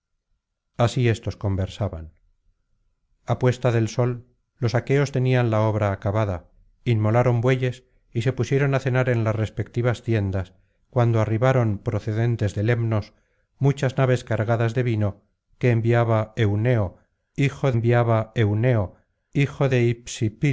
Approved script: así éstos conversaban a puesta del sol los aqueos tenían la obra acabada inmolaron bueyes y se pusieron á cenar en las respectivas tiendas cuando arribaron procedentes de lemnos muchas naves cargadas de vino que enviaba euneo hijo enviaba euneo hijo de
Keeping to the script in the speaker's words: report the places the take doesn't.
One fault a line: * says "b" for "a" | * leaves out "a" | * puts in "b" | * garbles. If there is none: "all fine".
all fine